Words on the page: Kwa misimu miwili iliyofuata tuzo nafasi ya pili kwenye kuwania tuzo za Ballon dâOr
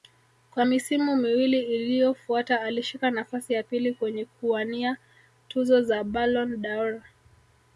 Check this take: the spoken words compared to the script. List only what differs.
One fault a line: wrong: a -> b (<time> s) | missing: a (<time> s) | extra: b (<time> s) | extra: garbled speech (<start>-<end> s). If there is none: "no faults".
wrong: tuzo -> alishika (2.6 s)